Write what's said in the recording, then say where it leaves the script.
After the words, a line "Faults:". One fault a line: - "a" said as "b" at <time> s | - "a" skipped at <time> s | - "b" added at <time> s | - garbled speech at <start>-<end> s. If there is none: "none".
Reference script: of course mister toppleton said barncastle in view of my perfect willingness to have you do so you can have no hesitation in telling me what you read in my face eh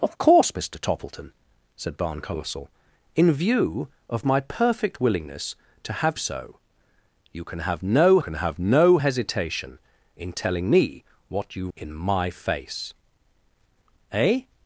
of course mister toppleton said barncastle in view of my perfect willingness to have so you can have no can have no hesitation in telling me what you in my face eh
Faults:
- "so" added at 6.2 s
- "do so you" said as "can have no" at 7.4 s
- "read" skipped at 11.7 s